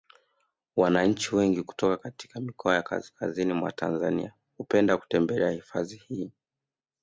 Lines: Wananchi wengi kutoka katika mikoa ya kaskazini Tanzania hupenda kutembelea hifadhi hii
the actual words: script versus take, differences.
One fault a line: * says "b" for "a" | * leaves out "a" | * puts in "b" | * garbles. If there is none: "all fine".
* puts in "mwa"